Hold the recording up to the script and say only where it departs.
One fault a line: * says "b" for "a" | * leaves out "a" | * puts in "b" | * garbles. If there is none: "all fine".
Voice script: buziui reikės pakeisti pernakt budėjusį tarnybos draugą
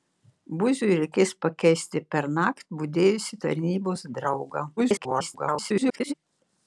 * garbles